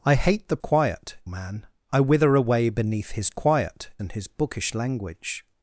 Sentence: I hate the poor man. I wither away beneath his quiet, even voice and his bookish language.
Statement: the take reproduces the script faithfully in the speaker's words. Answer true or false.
false